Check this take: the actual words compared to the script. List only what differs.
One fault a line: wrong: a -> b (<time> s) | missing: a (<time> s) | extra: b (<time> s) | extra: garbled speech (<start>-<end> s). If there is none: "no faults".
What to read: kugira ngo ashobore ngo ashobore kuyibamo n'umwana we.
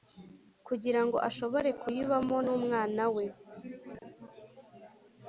missing: ngo ashobore (1.7 s)